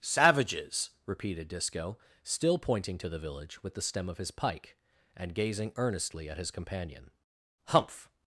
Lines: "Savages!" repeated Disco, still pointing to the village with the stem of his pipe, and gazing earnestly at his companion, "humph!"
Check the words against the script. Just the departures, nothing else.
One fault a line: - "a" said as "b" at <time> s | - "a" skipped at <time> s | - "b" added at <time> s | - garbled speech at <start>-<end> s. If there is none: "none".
- "pipe" said as "pike" at 4.3 s